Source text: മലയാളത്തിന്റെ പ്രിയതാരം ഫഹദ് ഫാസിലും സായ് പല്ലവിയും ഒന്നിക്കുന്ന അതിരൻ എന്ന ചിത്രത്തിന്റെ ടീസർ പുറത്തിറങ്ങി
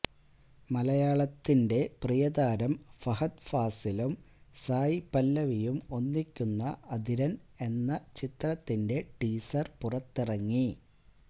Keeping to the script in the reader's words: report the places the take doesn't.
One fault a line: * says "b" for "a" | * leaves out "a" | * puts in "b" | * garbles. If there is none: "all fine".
all fine